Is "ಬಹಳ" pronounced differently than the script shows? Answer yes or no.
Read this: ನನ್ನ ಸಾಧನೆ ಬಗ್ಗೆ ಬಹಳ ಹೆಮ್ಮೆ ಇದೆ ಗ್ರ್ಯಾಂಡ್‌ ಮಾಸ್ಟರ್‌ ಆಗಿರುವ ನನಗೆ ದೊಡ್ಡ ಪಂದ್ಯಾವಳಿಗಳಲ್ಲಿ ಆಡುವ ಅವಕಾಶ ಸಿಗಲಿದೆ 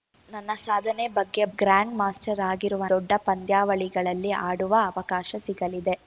yes